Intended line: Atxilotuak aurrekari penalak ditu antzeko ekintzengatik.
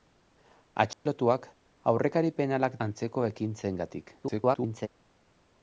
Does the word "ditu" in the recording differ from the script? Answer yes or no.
yes